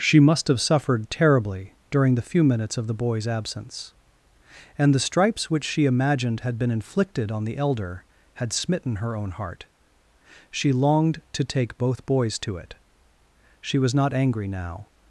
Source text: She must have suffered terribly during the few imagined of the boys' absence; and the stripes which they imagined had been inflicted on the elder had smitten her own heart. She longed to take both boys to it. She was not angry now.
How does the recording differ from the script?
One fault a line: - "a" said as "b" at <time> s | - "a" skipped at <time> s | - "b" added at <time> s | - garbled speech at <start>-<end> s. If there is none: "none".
- "imagined" said as "minutes" at 2.4 s
- "they" said as "she" at 5.6 s